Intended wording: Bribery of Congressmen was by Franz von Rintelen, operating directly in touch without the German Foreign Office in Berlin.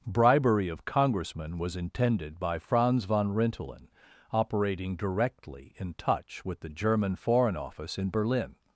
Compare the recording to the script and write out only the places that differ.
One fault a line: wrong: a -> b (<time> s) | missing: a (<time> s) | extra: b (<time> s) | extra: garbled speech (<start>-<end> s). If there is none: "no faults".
extra: intended (1.8 s)
wrong: without -> with (6.4 s)